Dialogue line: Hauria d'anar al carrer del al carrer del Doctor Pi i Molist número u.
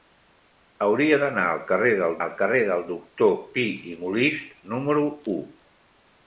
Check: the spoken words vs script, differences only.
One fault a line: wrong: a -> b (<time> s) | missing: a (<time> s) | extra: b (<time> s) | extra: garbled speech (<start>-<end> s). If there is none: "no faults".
no faults